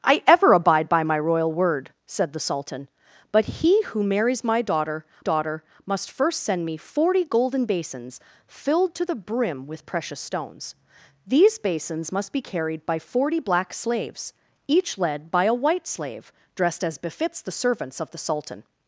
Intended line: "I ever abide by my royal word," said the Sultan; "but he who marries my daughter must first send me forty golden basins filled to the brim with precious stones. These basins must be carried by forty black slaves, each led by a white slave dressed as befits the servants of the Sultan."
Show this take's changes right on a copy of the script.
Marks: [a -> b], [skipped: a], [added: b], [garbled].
"I ever abide by my royal word," said the Sultan; "but he who marries my daughter [added: daughter] must first send me forty golden basins filled to the brim with precious stones. These basins must be carried by forty black slaves, each led by a white slave dressed as befits the servants of the Sultan."